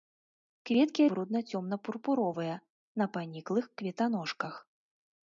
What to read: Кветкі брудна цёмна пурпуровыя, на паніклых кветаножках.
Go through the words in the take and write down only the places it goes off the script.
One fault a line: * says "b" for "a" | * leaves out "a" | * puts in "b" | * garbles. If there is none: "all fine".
all fine